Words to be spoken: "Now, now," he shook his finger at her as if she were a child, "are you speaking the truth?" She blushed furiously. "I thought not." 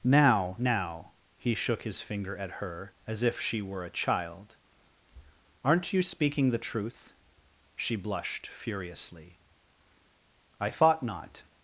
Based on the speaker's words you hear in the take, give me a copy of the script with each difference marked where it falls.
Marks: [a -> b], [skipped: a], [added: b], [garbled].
"Now, now," he shook his finger at her as if she were a child, ["are -> aren't] you speaking the truth?" She blushed furiously. "I thought not."